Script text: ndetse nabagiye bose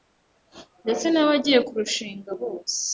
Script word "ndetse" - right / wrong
right